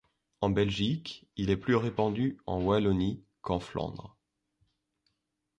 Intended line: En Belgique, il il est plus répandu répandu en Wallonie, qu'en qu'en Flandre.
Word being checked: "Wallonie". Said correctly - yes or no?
yes